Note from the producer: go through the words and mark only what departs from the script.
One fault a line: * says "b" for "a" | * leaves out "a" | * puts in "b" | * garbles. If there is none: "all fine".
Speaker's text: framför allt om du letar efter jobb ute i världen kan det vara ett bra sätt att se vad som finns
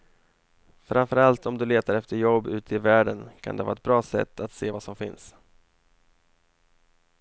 all fine